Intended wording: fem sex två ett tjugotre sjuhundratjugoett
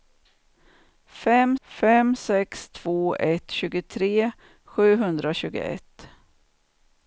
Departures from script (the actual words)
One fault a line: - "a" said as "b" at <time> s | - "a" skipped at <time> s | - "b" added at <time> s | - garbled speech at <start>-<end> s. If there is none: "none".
- "fem" added at 1.6 s